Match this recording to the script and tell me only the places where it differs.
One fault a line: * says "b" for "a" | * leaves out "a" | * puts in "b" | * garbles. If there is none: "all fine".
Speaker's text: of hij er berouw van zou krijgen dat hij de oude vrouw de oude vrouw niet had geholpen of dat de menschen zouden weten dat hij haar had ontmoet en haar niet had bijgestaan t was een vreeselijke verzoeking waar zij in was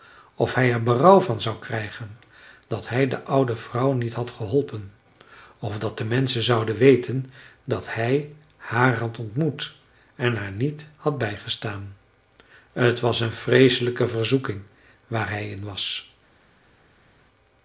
* leaves out "de oude vrouw"
* says "hij" for "zij"